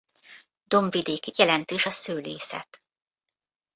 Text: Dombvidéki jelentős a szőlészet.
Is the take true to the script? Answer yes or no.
yes